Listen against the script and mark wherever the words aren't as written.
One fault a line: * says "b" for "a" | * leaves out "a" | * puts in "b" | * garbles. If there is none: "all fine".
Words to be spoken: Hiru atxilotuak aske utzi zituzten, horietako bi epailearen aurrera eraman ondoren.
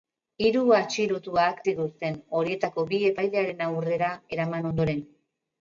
* leaves out "aske utzi"